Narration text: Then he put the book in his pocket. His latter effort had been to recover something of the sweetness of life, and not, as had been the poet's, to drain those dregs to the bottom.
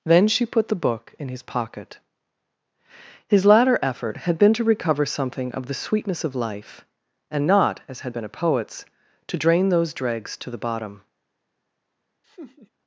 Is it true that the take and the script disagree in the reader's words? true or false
true